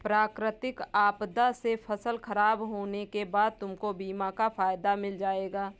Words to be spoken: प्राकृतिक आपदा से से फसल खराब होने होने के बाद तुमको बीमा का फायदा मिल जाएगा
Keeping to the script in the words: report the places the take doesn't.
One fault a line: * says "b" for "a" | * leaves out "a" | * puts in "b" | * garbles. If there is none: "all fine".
* leaves out "से"
* leaves out "होने"